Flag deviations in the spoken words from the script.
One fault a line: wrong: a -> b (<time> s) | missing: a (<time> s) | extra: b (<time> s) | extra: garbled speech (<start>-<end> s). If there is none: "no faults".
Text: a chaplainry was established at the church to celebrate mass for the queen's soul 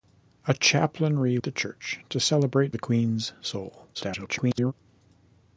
missing: was established at (1.4 s)
missing: mass for (2.8 s)
extra: garbled speech (3.9-4.7 s)